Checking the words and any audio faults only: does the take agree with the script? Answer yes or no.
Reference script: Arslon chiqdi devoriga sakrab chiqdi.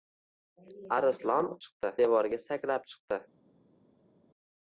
yes